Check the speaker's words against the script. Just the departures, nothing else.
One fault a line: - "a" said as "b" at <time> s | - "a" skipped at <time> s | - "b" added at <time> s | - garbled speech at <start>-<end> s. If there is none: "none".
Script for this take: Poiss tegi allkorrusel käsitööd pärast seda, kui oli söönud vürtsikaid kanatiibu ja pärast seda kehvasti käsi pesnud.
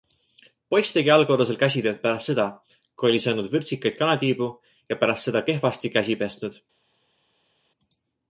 none